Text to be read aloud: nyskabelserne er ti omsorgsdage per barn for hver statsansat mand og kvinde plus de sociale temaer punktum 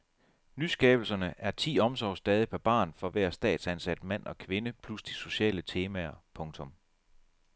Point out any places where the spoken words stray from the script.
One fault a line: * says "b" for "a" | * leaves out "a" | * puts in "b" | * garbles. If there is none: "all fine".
all fine